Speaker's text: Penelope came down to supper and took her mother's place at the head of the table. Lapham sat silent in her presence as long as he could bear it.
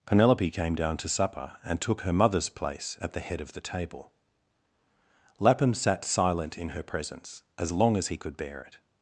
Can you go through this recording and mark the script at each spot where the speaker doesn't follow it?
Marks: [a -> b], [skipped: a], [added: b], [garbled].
Penelope came down to supper and took her mother's place at the head of the table. Lapham sat silent in her presence as long as he could bear it.